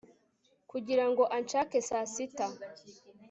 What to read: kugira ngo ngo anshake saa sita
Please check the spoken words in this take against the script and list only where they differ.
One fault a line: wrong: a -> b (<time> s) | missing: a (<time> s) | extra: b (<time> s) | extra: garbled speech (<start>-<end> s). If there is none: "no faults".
missing: ngo (1.2 s)